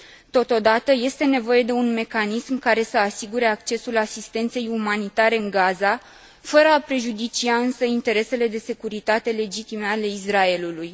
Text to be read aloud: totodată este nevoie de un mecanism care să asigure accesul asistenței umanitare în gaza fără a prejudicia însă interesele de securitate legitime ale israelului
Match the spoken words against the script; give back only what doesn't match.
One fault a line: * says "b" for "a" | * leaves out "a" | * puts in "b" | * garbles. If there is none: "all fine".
all fine